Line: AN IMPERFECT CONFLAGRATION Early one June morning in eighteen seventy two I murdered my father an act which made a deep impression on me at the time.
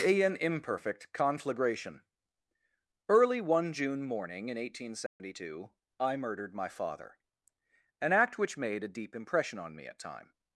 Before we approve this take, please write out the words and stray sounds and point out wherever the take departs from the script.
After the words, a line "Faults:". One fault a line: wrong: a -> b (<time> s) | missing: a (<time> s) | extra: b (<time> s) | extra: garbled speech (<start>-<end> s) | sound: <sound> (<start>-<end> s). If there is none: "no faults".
AN IMPERFECT CONFLAGRATION Early one June morning in eighteen seventy two I murdered my father an act which made a deep impression on me at time.
Faults:
sound: dropout (5.1-5.2 s)
missing: the (10.0 s)